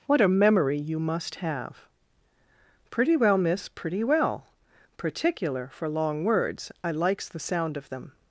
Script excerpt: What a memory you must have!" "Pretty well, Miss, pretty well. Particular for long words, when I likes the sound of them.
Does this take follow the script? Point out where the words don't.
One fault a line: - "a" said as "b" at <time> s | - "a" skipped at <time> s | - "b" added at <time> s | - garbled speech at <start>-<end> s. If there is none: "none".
- "when" skipped at 6.7 s